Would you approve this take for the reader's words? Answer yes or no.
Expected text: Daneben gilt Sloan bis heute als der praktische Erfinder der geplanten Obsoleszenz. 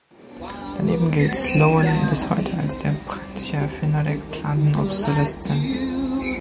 yes